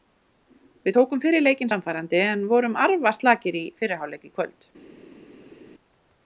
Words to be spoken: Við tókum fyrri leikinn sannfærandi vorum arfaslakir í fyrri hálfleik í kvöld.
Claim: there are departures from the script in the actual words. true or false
true